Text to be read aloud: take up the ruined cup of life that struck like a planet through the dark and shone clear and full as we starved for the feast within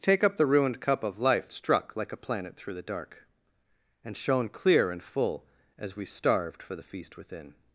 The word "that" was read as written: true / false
false